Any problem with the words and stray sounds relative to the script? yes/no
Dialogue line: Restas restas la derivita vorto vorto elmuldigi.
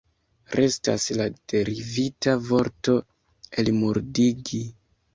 yes